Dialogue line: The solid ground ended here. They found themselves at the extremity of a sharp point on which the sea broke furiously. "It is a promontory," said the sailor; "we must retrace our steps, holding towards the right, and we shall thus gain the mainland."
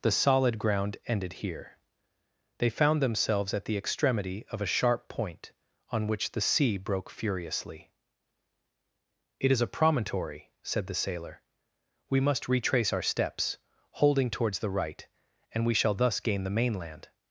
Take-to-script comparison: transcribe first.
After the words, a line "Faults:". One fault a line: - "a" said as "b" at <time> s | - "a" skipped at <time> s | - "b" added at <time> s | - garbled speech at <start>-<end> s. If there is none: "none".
The solid ground ended here. They found themselves at the extremity of a sharp point on which the sea broke furiously. "It is a promontory," said the sailor; "we must retrace our steps, holding towards the right, and we shall thus gain the mainland."
Faults:
none